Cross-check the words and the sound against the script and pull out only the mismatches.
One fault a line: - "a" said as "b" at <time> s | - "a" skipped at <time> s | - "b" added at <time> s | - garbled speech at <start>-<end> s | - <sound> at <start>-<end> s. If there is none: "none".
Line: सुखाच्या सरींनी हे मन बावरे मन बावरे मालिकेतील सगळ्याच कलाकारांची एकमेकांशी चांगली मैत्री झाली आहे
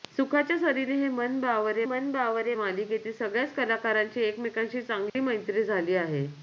- dropout at 5.1-5.2 s